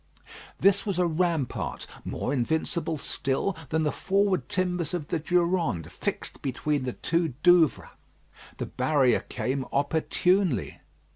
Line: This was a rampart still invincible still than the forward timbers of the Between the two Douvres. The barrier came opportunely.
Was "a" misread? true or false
false